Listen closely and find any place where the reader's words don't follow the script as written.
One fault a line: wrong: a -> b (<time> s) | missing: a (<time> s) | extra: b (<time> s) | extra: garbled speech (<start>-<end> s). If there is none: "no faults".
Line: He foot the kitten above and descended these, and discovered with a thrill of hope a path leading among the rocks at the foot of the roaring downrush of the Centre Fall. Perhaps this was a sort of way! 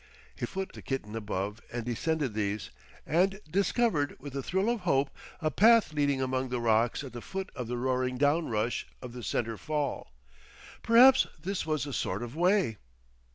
no faults